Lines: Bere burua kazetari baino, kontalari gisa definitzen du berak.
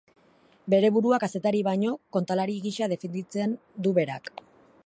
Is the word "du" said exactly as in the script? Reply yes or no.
yes